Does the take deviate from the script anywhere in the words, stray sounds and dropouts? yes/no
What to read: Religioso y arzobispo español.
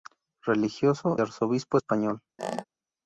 yes